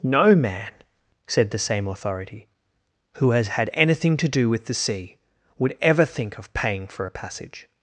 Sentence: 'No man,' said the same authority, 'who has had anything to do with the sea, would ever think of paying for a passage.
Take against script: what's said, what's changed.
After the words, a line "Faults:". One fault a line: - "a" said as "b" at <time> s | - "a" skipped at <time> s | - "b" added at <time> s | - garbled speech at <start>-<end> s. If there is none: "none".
'No man,' said the same authority, 'who has had anything to do with the sea, would ever think of paying for a passage.
Faults:
none